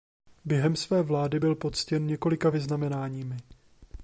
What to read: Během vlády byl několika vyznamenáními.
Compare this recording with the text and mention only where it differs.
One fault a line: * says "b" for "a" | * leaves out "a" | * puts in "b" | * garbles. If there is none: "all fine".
* puts in "své"
* puts in "poctěn"